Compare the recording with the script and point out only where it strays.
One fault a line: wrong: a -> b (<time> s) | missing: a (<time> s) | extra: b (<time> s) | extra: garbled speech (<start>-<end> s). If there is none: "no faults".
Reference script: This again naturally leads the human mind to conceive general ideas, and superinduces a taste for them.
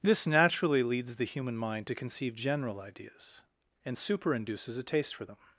missing: again (0.2 s)